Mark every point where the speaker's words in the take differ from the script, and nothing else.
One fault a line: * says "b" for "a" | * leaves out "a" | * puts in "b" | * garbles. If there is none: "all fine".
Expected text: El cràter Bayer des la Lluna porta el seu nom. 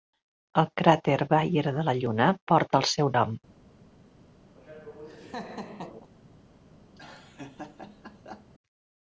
* says "de" for "des"